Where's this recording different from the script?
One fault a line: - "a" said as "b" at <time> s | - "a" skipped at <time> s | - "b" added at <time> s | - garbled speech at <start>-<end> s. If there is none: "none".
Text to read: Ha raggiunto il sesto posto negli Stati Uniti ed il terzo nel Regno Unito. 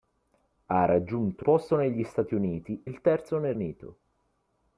- "il sesto" skipped at 1.4 s
- "ed" skipped at 2.8 s
- "Regno" skipped at 3.6 s